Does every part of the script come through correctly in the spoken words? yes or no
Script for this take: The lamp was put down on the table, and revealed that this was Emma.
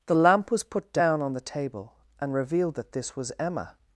yes